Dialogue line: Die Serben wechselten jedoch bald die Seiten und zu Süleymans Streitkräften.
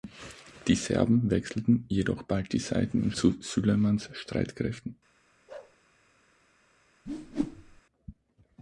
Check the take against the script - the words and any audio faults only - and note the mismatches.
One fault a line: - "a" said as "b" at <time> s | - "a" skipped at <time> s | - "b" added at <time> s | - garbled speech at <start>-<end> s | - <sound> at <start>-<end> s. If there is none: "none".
- bark at 5.5-5.8 s
- whoosh at 7.1-7.8 s